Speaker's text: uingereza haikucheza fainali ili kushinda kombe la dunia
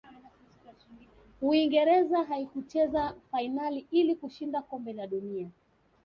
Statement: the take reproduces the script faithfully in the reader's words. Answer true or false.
true